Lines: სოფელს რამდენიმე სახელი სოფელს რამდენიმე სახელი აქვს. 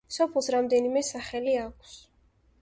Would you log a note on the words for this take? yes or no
yes